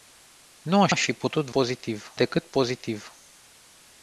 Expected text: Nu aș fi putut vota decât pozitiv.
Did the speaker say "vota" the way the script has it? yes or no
no